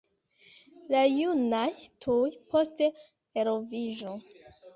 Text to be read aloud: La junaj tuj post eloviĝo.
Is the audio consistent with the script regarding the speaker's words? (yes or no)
yes